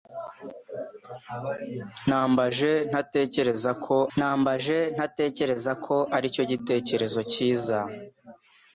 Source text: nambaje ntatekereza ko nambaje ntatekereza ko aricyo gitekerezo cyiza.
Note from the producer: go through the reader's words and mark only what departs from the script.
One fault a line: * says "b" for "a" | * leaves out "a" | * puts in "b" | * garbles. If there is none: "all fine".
all fine